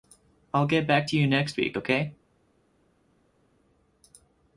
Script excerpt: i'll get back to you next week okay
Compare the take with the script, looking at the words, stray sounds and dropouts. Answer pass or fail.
pass